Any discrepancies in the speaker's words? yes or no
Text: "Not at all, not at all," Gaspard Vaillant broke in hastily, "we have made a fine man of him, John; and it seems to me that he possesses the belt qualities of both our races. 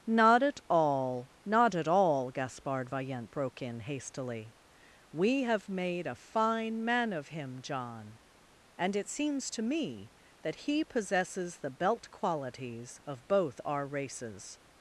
no